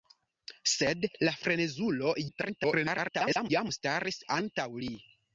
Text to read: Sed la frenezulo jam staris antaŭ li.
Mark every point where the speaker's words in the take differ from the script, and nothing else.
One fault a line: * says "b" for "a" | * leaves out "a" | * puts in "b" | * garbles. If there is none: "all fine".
* garbles